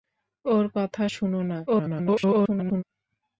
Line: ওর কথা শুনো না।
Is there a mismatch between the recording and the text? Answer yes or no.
yes